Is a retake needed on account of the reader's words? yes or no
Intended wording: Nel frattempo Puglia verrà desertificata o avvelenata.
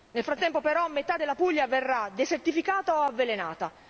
yes